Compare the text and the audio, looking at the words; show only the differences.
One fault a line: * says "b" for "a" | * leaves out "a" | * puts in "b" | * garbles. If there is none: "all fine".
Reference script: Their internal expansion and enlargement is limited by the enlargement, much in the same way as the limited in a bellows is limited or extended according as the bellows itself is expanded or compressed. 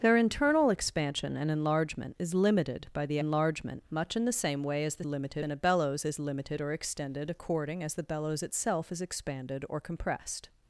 all fine